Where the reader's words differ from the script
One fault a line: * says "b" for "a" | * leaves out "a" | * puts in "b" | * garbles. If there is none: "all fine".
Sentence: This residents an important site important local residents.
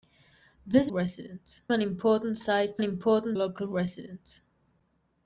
all fine